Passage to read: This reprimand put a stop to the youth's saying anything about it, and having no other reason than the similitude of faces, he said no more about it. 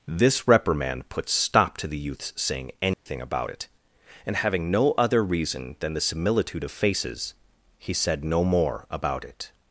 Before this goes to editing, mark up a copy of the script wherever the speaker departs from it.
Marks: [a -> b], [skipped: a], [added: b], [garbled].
This reprimand put [skipped: a] stop to the youth's saying anything about it, and having no other reason than the similitude of faces, he said no more about it.